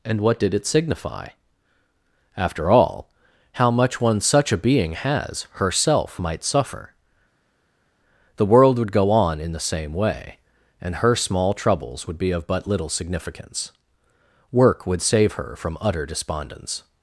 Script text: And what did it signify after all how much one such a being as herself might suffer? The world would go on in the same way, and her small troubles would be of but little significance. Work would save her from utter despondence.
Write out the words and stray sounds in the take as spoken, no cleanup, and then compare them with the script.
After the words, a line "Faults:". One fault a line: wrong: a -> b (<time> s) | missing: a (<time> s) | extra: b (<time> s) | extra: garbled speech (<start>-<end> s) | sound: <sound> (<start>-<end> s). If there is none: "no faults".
And what did it signify after all how much one such a being has herself might suffer? The world would go on in the same way, and her small troubles would be of but little significance. Work would save her from utter despondence.
Faults:
wrong: as -> has (4.9 s)